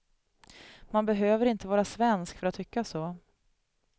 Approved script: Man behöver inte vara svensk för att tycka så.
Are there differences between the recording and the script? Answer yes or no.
no